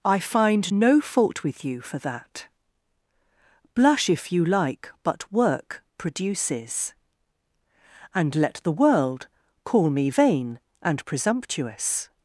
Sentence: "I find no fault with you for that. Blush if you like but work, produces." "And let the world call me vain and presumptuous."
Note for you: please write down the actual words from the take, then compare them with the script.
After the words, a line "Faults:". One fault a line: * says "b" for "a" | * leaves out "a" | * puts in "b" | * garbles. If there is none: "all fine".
"I find no fault with you for that. Blush if you like but work, produces." "And let the world call me vain and presumptuous."
Faults:
all fine